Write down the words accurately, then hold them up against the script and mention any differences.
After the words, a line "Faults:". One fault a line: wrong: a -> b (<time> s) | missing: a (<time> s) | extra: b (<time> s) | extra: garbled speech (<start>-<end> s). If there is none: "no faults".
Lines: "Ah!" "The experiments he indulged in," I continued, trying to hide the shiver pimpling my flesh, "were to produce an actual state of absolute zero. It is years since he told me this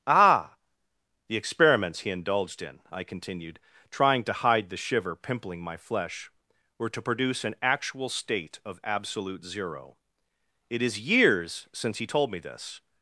"Ah!" "The experiments he indulged in," I continued, trying to hide the shiver pimpling my flesh, "were to produce an actual state of absolute zero. It is years since he told me this
Faults:
no faults